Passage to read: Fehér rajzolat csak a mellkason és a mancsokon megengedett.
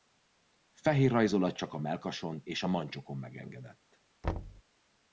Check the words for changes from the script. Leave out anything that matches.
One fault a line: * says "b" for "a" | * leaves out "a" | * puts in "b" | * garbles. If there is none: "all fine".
all fine